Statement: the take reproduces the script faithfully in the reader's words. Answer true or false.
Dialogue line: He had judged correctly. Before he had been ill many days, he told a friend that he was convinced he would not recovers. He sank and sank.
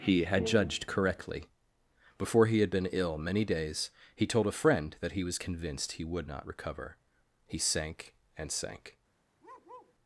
false